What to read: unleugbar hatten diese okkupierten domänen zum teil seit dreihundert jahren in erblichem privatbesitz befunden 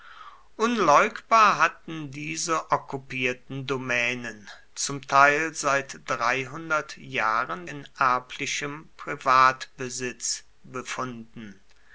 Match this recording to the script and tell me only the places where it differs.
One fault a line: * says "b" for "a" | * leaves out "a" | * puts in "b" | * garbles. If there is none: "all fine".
all fine